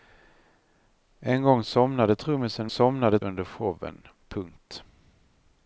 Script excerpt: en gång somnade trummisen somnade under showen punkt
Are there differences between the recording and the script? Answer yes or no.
no